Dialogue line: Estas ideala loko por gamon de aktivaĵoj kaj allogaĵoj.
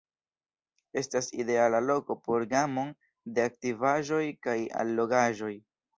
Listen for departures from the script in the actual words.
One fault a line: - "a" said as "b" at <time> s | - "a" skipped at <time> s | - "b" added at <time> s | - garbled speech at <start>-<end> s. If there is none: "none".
none